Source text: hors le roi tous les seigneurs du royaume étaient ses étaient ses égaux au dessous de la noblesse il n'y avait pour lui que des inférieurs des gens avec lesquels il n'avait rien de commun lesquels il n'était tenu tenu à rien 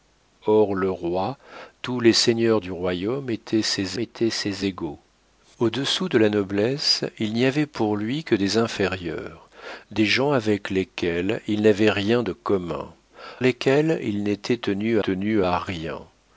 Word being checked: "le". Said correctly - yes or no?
yes